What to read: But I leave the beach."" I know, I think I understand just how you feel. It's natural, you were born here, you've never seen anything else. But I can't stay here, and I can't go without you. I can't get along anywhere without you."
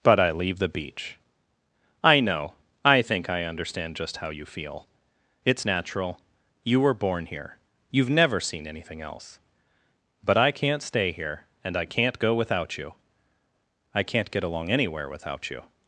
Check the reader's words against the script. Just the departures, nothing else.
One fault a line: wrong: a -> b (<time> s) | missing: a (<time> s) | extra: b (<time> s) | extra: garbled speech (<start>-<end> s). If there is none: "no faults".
no faults